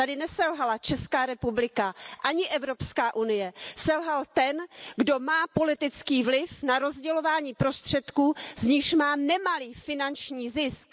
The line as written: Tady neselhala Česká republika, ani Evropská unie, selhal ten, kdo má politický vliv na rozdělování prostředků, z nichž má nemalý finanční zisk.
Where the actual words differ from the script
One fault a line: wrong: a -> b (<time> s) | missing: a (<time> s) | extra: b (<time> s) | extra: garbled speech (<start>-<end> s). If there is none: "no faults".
no faults